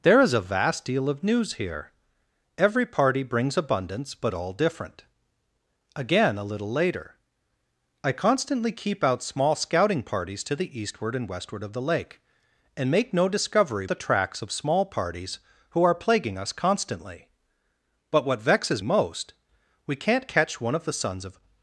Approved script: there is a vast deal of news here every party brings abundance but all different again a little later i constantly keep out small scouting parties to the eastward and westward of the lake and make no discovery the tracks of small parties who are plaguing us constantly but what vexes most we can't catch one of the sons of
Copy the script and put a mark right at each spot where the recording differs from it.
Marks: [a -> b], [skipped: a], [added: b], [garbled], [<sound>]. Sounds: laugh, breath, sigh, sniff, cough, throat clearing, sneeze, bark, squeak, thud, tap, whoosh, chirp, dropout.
there is a vast deal of news here every party brings abundance but all different again a little later i constantly keep out small scouting parties to the eastward and westward of the lake and make no discovery the tracks of small parties who are plaguing us constantly but what vexes most we can't catch one of the sons of